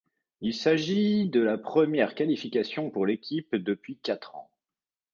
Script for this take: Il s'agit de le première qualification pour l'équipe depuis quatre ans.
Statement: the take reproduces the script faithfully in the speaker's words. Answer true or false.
false